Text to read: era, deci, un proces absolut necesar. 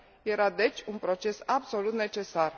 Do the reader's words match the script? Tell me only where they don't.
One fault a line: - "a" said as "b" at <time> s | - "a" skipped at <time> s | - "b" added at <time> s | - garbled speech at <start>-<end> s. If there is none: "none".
none